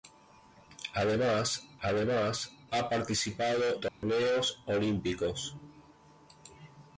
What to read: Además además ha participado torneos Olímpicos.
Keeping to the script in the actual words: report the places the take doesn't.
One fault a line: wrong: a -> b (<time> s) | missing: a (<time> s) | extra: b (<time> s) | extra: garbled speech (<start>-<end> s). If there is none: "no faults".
no faults